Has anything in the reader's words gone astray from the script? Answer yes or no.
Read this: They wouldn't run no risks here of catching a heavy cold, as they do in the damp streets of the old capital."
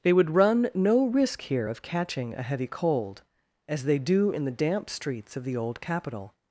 yes